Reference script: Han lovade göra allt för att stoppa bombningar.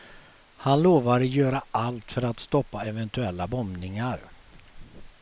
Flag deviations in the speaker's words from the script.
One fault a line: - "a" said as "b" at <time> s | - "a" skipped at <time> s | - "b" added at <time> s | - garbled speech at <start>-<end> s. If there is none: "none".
- "eventuella" added at 2.9 s